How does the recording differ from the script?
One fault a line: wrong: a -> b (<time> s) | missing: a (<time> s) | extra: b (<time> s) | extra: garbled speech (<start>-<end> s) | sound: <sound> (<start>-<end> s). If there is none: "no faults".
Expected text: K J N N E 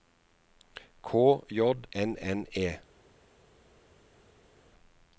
no faults